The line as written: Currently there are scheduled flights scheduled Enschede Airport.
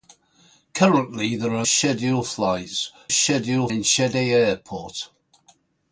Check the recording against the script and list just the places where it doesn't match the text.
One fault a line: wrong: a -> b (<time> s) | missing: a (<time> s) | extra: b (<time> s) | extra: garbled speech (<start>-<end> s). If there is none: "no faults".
no faults